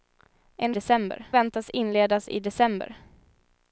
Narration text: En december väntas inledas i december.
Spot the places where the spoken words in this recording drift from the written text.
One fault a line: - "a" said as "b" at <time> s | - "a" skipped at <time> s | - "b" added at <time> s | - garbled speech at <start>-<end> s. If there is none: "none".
none